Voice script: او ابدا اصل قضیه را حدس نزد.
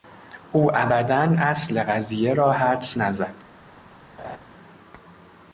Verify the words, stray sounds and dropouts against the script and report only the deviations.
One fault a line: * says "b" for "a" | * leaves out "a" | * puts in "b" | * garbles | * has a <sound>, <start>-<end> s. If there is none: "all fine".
* has a laugh, 4.2-4.4 s